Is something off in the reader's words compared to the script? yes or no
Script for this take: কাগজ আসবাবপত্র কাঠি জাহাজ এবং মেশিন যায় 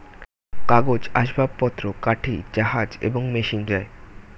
no